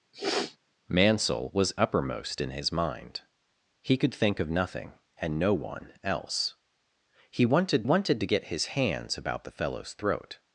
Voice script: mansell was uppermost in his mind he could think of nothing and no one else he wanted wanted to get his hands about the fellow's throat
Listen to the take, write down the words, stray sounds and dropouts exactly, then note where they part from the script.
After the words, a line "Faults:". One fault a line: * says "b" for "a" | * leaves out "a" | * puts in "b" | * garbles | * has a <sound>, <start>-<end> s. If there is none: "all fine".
mansell was uppermost in his mind he could think of nothing and no one else he wanted wanted to get his hands about the fellow's throat
Faults:
* has a sniff, 0.1-0.6 s